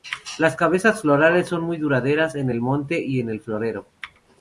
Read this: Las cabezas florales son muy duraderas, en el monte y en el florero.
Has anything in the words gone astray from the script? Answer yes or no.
no